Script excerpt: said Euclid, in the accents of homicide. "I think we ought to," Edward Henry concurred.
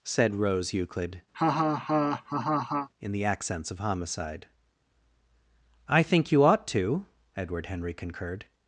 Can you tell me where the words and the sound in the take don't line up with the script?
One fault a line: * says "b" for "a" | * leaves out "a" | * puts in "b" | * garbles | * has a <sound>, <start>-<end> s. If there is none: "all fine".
* puts in "Rose"
* has a laugh, 1.3-2.9 s
* says "you" for "we"